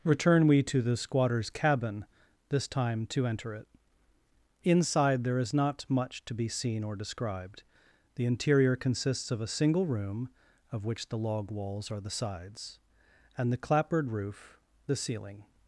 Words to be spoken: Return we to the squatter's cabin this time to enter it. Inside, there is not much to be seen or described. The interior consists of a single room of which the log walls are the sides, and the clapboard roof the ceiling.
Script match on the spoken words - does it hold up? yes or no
yes